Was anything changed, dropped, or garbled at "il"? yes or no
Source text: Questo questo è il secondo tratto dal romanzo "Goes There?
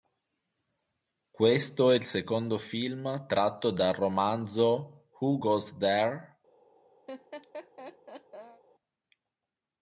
no